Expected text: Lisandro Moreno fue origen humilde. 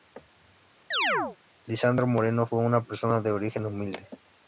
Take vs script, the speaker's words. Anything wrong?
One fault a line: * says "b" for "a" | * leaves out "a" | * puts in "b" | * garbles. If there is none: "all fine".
* puts in "una persona de"